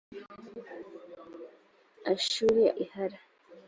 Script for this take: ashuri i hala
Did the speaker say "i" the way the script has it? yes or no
yes